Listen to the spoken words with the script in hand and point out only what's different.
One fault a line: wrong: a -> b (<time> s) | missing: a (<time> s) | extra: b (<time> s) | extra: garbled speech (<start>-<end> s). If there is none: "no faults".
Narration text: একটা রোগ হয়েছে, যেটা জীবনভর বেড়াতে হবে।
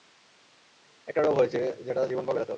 no faults